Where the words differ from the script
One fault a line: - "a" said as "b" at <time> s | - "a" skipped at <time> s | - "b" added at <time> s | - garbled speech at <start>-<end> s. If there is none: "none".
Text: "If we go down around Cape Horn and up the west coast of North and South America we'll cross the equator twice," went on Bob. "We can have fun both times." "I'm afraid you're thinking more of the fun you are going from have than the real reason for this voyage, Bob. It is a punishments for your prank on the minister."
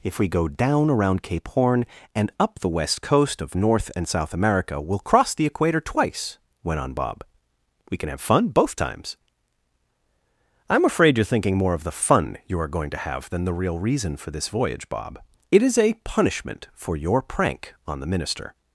- "from" said as "to" at 12.9 s
- "punishments" said as "punishment" at 16.0 s